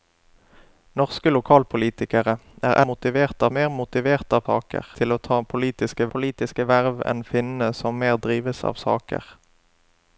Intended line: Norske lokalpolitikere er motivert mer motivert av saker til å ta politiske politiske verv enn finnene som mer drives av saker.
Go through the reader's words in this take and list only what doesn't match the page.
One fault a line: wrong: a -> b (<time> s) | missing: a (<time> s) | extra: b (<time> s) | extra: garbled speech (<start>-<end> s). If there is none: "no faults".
no faults